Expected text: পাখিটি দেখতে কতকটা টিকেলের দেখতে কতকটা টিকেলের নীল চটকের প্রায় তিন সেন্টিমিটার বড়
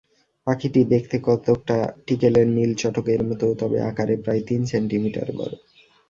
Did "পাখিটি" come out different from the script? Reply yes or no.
no